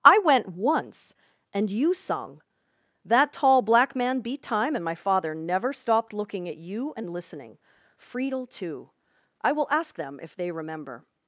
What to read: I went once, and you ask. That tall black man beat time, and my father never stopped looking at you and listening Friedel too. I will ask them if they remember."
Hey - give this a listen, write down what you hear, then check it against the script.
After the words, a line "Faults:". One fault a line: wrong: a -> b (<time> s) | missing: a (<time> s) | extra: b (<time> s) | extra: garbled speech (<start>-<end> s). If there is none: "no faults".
I went once, and you sung. That tall black man beat time, and my father never stopped looking at you and listening Friedel too. I will ask them if they remember."
Faults:
wrong: ask -> sung (1.9 s)